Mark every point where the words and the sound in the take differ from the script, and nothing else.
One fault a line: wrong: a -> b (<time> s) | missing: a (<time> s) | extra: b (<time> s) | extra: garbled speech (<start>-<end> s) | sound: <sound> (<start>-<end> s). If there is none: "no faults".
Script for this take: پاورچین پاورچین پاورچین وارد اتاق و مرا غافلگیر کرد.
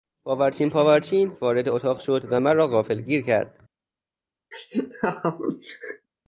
missing: پاورچین (1.4 s)
extra: شد (2.0 s)
sound: laugh (4.5-6.1 s)